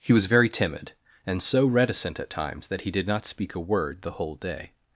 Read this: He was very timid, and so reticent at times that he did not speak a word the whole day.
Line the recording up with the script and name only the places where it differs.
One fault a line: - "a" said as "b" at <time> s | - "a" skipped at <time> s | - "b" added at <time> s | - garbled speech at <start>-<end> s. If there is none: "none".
none